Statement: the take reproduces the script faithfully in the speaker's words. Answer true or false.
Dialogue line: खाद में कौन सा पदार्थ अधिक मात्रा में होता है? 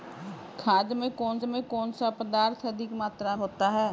false